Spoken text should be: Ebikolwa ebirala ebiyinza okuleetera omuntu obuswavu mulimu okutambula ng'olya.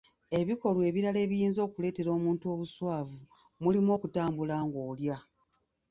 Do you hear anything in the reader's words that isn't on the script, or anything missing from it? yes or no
no